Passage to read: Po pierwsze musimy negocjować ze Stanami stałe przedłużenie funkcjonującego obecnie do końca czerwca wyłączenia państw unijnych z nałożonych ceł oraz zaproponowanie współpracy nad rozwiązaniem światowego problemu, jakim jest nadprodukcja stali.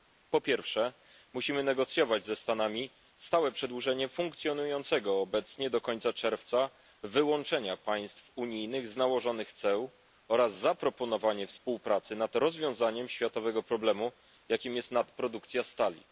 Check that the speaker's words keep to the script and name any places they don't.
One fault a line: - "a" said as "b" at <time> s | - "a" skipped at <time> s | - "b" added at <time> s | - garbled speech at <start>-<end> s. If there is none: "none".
none